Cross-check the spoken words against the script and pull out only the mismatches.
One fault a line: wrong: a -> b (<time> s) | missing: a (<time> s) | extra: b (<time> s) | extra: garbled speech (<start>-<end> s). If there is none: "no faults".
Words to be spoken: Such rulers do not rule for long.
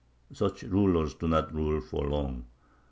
no faults